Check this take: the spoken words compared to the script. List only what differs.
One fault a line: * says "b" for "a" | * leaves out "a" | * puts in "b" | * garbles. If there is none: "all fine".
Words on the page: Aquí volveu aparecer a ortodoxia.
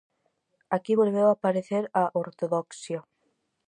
all fine